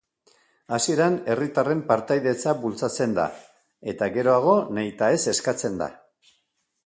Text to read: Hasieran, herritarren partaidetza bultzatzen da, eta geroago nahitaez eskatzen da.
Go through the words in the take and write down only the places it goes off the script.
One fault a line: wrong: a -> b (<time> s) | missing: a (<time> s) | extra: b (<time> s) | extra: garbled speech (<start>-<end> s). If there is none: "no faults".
no faults